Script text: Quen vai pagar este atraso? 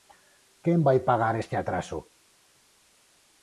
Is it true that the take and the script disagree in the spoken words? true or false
false